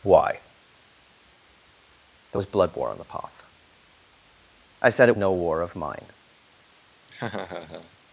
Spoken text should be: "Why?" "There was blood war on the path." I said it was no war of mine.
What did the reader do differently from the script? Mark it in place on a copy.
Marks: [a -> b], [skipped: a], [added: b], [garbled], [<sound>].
"Why?" "There was blood war on the path." I said it [skipped: was] no war of mine. [laugh]